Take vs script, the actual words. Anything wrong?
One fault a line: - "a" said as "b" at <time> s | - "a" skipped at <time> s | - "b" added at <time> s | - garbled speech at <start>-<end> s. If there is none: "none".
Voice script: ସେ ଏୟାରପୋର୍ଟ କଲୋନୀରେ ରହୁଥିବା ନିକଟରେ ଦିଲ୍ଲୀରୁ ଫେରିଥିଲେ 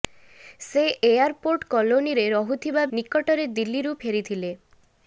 none